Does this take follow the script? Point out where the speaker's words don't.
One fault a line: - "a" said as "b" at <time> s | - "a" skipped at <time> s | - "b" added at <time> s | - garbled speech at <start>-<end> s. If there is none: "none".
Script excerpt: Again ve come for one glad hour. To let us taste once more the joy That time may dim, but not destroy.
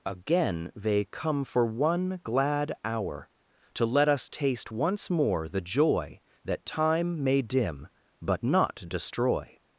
- "ve" said as "they" at 0.8 s